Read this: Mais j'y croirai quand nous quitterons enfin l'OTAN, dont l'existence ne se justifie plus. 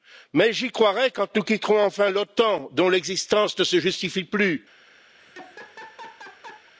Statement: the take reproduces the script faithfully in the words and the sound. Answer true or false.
false